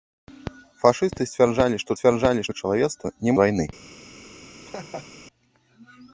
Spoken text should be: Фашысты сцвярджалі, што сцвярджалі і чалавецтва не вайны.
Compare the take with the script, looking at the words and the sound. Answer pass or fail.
fail